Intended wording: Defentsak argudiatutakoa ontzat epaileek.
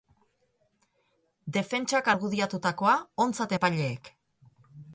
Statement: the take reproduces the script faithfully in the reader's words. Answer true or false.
true